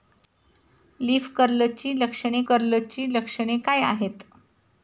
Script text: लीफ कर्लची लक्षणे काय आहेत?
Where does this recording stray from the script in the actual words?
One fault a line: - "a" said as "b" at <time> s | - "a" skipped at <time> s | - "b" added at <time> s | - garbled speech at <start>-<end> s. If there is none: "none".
- "कर्लची लक्षणे" added at 2.5 s